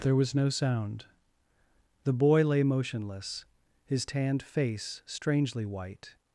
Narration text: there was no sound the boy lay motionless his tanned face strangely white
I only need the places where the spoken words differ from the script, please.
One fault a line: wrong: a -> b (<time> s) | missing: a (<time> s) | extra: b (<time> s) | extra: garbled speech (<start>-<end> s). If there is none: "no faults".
no faults